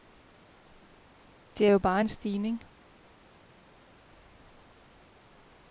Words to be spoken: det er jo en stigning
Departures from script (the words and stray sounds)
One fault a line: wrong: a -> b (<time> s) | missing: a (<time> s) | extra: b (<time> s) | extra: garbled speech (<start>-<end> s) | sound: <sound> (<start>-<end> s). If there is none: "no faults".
extra: bare (1.8 s)